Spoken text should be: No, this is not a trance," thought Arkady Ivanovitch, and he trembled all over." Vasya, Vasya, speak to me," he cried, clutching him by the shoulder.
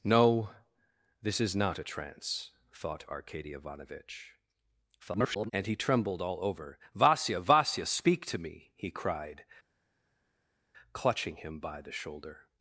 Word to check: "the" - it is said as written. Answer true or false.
true